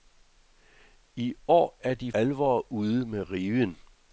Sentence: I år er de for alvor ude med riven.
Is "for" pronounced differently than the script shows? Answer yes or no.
yes